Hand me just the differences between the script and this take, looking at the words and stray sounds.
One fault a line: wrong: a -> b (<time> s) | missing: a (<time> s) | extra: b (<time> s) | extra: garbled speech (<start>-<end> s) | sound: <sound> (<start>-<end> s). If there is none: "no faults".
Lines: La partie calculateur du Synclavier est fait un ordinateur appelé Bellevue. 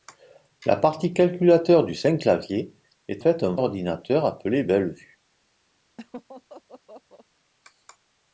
sound: laugh (6.0-7.3 s)